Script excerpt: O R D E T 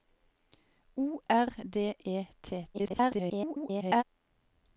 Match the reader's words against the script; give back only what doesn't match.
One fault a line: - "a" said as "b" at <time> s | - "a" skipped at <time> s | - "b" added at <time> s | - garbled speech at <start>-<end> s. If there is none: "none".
- garbled speech at 2.7-4.0 s